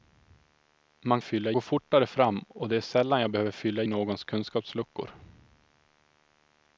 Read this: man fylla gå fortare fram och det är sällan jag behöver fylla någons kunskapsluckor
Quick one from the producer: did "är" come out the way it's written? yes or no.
yes